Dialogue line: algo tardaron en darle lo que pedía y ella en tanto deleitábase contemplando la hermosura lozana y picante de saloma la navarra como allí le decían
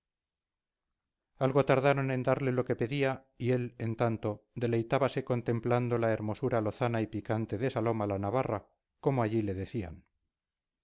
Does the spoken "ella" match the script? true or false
false